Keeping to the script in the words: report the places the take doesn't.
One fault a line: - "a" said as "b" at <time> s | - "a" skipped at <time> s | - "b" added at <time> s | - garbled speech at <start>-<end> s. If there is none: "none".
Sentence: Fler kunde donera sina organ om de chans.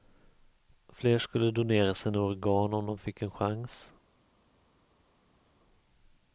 - "kunde" said as "skulle" at 1.2 s
- "fick en" added at 3.0 s